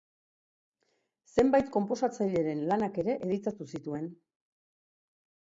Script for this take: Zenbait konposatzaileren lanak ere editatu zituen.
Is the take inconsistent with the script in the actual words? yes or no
no